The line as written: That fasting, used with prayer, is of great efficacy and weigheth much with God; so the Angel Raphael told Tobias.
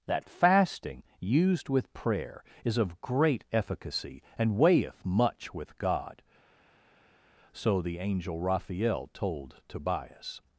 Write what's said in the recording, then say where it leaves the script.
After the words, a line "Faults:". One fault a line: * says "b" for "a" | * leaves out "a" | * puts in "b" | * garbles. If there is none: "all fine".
That fasting, used with prayer, is of great efficacy and weigheth much with God; so the Angel Raphael told Tobias.
Faults:
all fine